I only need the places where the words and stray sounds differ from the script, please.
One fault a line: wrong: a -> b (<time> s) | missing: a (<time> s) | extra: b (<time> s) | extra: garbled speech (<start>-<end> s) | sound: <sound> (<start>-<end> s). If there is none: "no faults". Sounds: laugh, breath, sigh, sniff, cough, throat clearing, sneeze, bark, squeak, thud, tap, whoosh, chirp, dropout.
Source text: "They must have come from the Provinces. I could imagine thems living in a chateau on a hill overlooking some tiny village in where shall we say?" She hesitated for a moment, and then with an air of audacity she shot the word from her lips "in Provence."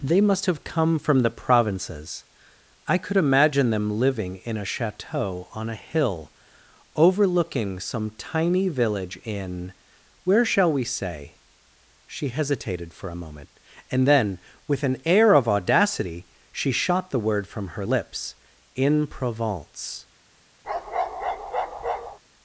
wrong: thems -> them (3.7 s)
sound: bark (20.6-22.2 s)